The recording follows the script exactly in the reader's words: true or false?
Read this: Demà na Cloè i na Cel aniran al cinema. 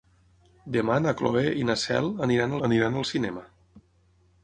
false